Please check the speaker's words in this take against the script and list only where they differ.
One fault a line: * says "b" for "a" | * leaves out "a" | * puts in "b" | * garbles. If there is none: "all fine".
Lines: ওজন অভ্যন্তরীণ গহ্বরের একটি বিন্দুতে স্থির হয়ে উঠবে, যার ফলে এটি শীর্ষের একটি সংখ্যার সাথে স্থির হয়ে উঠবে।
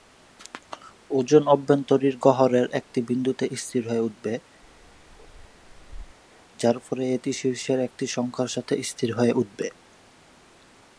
all fine